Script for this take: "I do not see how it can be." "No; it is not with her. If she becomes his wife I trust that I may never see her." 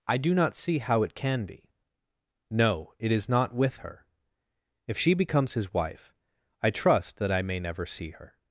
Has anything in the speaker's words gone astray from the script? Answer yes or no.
no